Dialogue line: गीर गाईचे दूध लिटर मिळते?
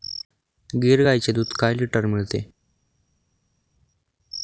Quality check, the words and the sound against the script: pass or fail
fail